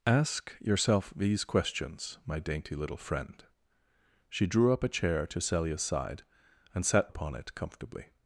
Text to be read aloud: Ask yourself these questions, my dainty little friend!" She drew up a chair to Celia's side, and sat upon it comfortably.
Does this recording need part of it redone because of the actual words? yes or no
no